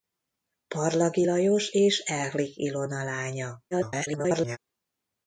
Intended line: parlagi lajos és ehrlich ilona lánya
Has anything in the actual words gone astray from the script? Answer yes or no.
yes